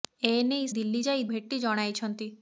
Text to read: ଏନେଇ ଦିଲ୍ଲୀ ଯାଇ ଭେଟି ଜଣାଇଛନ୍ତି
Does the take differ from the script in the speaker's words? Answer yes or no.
no